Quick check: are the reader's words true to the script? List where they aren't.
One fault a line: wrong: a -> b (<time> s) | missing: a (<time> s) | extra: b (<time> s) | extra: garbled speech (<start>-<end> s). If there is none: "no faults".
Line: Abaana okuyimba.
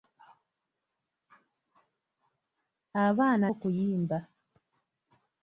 no faults